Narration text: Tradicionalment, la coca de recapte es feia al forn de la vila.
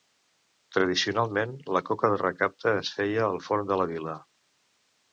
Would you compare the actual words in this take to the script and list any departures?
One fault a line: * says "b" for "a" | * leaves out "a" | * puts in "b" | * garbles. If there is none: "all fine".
all fine